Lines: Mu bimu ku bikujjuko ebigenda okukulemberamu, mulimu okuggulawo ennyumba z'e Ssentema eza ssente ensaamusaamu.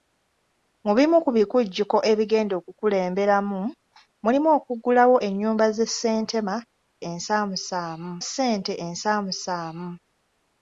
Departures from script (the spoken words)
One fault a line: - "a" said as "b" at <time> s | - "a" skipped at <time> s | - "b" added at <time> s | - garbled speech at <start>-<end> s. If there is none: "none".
- "eza" said as "ensaamusaamu" at 7.1 s